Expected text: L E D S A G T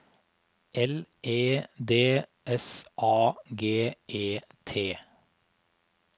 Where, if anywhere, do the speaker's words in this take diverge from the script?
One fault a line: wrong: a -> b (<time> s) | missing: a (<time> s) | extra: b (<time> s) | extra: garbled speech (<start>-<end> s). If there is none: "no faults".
extra: E (4.1 s)